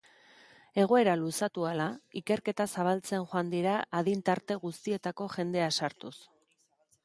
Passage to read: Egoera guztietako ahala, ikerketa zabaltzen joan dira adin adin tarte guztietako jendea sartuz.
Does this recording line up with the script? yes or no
no